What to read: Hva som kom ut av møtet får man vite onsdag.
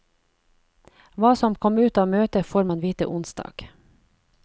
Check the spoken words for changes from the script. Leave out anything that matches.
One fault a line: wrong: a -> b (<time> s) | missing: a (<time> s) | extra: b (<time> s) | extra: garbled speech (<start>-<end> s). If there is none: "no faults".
no faults